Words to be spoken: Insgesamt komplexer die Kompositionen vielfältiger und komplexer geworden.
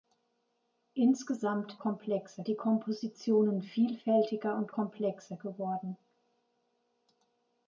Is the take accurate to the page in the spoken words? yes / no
yes